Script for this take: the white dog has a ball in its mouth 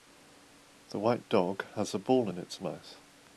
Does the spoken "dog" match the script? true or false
true